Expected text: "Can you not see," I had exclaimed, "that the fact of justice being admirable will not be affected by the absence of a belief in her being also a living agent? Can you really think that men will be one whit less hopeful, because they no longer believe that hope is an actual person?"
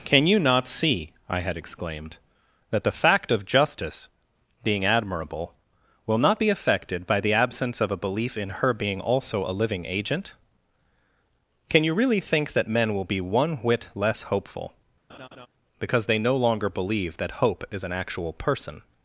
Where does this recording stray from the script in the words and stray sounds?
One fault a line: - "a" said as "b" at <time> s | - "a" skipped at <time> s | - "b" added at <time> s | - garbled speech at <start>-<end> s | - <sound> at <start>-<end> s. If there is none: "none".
- laugh at 15.1-15.5 s